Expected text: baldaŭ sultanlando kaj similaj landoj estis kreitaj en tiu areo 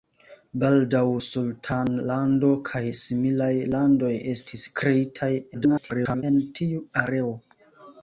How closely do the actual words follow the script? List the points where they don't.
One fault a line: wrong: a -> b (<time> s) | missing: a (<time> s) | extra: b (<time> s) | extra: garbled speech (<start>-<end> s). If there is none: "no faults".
extra: garbled speech (5.5-6.2 s)